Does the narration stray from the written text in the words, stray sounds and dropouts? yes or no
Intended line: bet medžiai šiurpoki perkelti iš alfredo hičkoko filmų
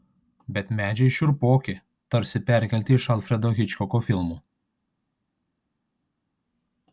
yes